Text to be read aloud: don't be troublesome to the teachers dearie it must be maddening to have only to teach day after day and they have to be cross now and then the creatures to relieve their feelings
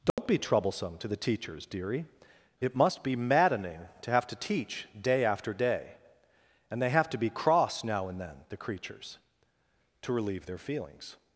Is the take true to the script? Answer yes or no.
no